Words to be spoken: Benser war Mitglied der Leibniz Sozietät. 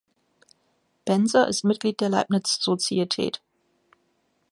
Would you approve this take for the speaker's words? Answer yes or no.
no